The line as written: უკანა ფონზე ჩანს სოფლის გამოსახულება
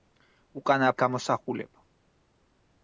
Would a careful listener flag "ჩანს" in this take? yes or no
yes